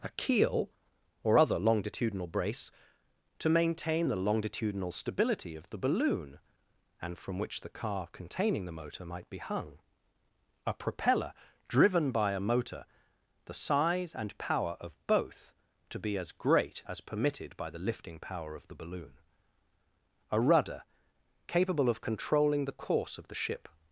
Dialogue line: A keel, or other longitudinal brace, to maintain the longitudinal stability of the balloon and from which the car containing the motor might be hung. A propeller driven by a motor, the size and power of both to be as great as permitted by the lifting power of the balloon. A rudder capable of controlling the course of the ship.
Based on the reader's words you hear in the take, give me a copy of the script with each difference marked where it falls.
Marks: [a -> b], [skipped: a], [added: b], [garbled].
A keel, or other longitudinal brace, to maintain the longitudinal stability of the balloon and from which the car containing the motor might be hung. A propeller driven by a motor, the size and power of both to be as great as permitted by the lifting power of the balloon. A rudder capable of controlling the course of the ship.